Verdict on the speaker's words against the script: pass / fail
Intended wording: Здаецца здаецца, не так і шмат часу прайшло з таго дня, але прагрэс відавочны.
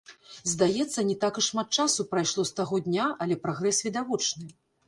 fail